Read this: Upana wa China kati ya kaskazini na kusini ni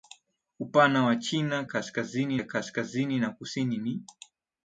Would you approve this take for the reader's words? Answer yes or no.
no